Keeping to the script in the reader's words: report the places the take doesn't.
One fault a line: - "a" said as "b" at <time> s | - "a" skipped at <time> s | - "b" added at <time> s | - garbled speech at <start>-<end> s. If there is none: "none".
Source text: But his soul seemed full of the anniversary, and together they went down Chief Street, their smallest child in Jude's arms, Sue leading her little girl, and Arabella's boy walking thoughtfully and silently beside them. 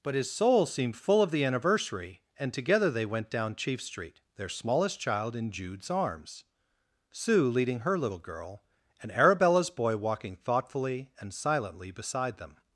none